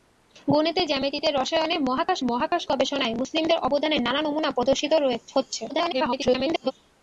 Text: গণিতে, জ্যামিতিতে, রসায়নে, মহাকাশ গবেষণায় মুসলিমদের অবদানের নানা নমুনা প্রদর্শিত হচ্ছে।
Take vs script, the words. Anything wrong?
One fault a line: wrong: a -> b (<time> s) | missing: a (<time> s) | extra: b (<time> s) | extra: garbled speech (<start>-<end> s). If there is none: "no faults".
extra: মহাকাশ (2.3 s)
extra: garbled speech (5.7-6.7 s)